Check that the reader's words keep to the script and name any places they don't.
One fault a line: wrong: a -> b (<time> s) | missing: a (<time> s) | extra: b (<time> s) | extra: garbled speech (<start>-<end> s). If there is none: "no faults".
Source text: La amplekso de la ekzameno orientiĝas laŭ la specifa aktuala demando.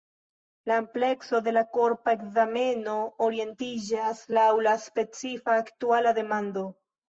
extra: korpa (1.8 s)